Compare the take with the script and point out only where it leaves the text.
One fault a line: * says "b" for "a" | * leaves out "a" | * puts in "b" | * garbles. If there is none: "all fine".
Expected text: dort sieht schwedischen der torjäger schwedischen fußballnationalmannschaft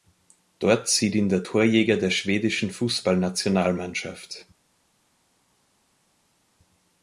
* says "ihn" for "schwedischen"
* puts in "der"